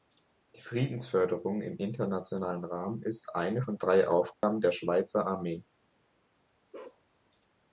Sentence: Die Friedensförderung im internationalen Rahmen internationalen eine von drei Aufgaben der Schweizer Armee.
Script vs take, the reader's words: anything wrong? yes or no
yes